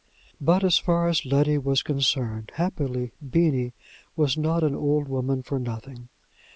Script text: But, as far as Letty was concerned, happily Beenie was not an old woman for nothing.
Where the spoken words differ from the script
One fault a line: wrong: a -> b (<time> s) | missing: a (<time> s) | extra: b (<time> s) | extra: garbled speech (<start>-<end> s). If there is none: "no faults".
no faults